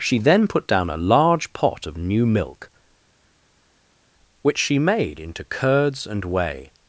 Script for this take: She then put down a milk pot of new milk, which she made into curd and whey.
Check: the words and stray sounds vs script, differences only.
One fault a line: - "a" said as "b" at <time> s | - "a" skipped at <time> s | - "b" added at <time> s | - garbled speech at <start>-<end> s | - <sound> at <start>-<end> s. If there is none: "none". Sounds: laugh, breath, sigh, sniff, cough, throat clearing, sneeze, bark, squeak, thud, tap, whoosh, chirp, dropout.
- "milk" said as "large" at 1.0 s
- "curd" said as "curds" at 5.4 s